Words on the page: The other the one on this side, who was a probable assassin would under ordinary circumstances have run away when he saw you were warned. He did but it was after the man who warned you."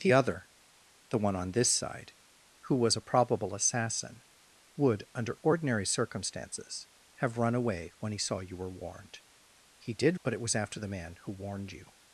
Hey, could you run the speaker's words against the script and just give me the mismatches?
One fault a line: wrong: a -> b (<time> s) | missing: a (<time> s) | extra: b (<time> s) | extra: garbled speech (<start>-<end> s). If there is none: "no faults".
no faults